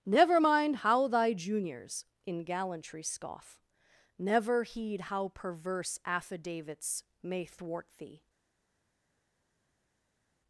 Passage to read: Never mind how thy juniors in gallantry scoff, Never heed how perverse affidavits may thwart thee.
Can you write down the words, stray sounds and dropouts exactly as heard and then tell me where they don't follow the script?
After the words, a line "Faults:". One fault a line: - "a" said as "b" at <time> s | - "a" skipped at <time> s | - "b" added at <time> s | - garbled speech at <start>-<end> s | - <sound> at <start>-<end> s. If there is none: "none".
Never mind how thy juniors in gallantry scoff, Never heed how perverse affidavits may thwart thee.
Faults:
none